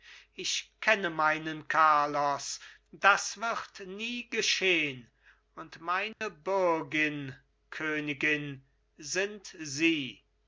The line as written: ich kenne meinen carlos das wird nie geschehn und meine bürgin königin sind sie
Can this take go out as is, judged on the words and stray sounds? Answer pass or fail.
fail